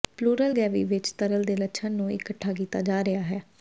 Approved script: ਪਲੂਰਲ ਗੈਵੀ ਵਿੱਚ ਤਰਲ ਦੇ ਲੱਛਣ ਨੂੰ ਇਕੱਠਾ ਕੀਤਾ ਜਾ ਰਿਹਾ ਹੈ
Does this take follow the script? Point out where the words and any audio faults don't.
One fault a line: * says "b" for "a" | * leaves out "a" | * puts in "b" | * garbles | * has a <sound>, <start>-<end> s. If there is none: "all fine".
all fine